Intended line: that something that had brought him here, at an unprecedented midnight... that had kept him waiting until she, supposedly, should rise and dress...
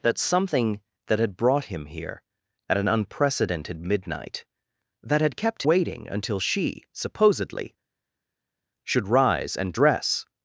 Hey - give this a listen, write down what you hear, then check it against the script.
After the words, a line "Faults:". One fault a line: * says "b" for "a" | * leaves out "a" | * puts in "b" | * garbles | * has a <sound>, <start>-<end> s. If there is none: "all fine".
that something that had brought him here, at an unprecedented midnight... that had kept waiting until she, supposedly, should rise and dress...
Faults:
* leaves out "him"